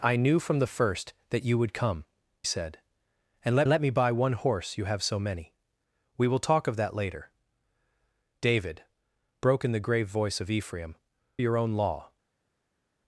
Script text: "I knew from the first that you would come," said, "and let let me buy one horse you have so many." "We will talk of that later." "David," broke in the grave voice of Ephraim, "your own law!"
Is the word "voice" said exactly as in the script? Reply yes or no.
yes